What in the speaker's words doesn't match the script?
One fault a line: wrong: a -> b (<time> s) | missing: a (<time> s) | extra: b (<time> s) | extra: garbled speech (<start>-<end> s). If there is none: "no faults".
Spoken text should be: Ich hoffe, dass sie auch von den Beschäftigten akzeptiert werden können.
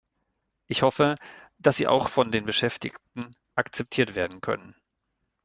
no faults